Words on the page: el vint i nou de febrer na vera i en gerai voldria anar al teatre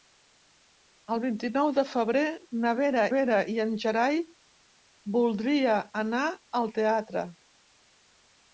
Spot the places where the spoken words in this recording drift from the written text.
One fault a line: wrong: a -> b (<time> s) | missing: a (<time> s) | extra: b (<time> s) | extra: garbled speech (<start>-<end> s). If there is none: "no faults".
extra: vera (3.1 s)